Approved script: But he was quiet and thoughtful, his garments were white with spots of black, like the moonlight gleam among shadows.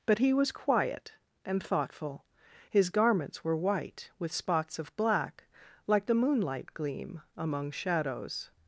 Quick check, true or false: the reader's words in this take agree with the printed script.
true